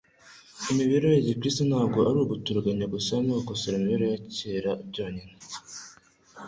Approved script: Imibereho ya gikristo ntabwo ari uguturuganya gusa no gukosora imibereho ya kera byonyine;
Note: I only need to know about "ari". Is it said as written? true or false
true